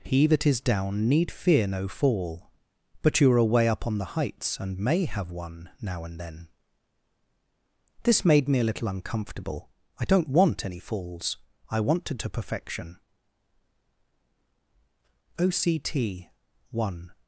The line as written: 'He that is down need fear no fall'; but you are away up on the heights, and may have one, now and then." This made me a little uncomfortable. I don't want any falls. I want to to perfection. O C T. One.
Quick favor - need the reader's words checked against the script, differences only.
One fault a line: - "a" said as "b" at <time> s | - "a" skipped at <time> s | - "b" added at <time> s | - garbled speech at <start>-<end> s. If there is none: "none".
none